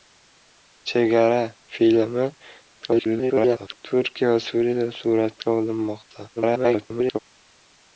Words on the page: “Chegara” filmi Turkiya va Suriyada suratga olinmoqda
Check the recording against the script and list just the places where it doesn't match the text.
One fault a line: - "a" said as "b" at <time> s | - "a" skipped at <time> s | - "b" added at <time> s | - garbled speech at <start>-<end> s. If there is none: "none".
- garbled speech at 2.8-3.8 s
- garbled speech at 6.4-7.2 s